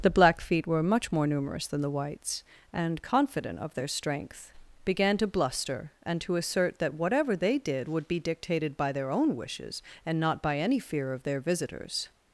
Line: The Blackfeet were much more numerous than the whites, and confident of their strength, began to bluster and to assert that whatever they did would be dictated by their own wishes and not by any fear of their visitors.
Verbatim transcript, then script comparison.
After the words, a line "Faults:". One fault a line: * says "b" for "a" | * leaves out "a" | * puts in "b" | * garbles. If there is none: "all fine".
The Blackfeet were much more numerous than the whites, and confident of their strength, began to bluster and to assert that whatever they did would be dictated by their own wishes and not by any fear of their visitors.
Faults:
all fine